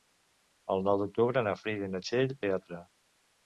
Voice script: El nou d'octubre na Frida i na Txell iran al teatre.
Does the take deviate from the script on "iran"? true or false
true